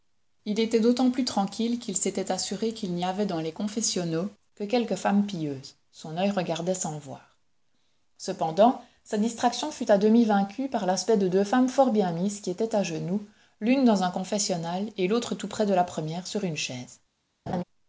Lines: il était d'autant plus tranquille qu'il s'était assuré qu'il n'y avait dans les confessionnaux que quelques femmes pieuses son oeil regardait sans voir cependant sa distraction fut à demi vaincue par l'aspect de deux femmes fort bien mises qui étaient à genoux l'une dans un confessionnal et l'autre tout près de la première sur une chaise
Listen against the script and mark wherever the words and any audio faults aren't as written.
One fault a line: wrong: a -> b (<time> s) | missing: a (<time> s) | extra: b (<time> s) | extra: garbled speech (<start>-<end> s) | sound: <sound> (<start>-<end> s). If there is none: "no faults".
sound: laugh (17.5-17.6 s)